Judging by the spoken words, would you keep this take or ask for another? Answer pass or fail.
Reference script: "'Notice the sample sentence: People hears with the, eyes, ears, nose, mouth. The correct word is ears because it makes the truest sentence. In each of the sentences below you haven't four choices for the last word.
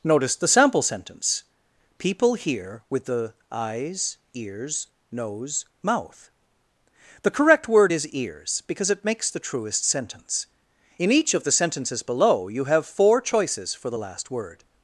fail